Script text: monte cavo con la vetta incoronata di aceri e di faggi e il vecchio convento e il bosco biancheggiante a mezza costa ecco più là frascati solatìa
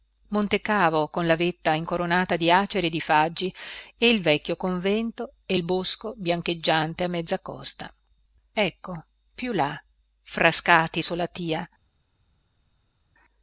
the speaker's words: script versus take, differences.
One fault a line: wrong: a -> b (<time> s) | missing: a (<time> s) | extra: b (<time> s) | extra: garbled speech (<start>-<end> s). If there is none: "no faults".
no faults